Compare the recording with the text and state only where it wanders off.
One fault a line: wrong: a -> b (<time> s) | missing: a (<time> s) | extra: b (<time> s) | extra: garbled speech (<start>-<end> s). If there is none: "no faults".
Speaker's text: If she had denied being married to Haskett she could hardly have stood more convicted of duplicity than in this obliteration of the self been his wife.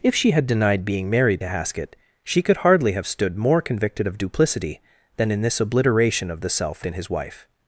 no faults